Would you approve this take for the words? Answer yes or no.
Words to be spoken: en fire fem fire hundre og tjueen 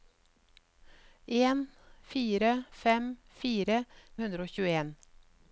yes